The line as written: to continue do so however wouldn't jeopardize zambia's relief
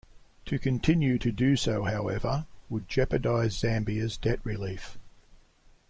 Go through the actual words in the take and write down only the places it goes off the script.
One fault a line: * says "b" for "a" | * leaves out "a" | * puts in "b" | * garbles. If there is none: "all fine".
* puts in "to"
* says "would" for "wouldn't"
* puts in "debt"